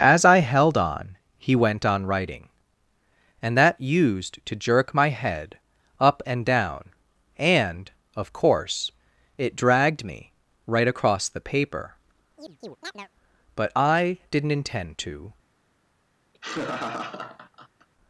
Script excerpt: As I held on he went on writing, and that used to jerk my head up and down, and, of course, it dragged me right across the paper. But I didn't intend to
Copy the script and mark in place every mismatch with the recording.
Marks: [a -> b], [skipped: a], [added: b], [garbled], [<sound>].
As I held on he went on writing, and that used to jerk my head up and down, and, of course, it dragged me right across the paper. [chirp] But I didn't intend to [laugh]